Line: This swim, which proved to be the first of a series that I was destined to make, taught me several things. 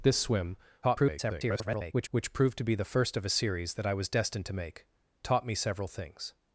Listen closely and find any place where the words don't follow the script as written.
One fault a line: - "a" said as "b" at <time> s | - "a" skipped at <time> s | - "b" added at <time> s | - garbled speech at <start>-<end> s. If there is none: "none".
- garbled speech at 0.8-2.1 s